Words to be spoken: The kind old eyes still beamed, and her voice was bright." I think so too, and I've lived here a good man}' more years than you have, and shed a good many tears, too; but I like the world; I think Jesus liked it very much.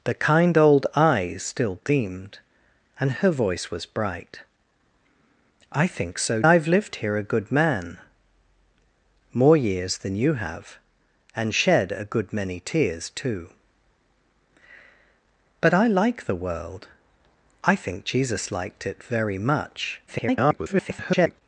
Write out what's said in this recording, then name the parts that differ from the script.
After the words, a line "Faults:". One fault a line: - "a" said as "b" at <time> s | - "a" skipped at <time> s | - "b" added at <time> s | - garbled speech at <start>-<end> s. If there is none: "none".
The kind old eyes still beamed, and her voice was bright." I think so I've lived here a good man}' more years than you have, and shed a good many tears, too; but I like the world; I think Jesus liked it very much. [garbled]
Faults:
- "too and" skipped at 6.4 s
- garbled speech at 20.1-21.4 s